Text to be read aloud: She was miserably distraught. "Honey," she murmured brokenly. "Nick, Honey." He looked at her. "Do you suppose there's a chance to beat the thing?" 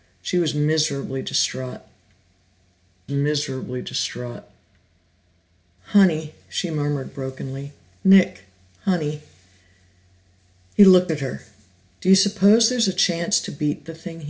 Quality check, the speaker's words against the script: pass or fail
fail